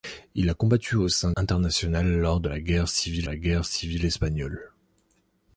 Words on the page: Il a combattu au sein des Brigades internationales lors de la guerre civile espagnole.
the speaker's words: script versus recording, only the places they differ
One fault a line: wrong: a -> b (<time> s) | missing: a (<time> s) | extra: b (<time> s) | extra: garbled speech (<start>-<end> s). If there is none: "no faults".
missing: des Brigades (1.3 s)
extra: la guerre civile (3.3 s)